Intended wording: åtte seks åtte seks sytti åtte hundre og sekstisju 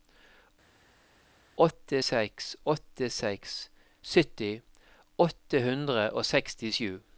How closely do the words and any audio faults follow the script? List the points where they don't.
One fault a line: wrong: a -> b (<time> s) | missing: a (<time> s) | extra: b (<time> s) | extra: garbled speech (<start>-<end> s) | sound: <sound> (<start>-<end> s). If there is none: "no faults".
no faults